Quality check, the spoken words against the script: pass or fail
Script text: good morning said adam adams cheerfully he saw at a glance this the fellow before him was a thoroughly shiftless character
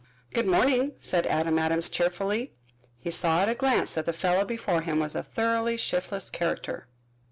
fail